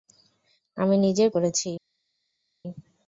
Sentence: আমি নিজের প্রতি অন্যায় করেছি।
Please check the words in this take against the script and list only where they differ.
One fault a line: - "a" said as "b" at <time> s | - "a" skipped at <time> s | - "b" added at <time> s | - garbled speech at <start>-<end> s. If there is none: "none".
- "প্রতি অন্যায়" skipped at 1.3 s